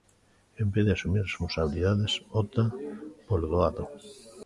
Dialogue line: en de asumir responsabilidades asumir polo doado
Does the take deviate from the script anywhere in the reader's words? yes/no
yes